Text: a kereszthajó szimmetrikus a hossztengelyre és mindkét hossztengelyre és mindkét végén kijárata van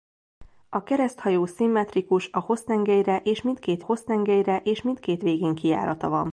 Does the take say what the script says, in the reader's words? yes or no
yes